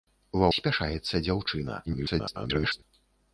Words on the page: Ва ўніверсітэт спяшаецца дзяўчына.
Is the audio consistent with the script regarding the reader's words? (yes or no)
no